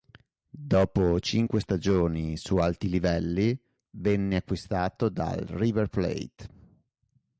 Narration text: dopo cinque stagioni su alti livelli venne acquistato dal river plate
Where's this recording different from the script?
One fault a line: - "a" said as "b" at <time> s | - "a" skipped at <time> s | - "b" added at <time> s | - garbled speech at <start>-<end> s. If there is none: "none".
none